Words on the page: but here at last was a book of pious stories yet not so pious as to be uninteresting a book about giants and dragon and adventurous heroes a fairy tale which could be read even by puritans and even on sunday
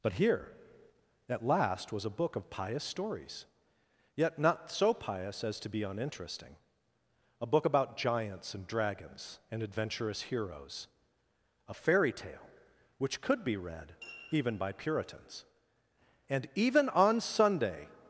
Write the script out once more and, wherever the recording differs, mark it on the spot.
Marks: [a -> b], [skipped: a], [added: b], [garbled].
but here at last was a book of pious stories yet not so pious as to be uninteresting a book about giants and [dragon -> dragons] and adventurous heroes a fairy tale which could be read even by puritans and even on sunday